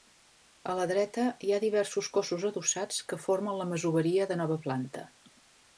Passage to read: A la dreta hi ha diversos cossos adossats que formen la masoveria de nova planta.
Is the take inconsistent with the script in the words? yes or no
no